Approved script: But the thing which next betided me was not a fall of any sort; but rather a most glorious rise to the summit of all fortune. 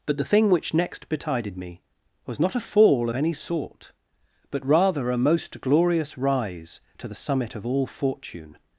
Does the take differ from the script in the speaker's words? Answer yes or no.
no